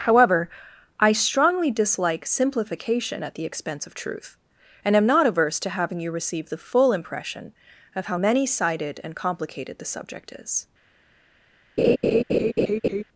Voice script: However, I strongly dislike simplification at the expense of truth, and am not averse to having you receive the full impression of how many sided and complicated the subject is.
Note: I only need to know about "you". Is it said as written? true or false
true